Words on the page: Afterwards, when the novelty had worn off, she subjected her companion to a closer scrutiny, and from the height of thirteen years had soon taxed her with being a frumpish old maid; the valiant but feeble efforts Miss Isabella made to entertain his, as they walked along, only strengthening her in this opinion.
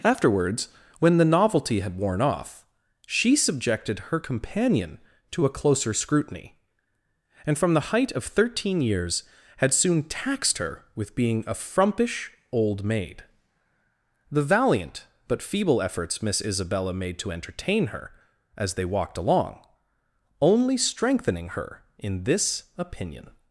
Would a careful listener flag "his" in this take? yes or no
yes